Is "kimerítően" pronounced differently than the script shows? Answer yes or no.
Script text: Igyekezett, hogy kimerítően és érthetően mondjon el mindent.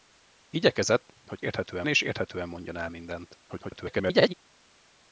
yes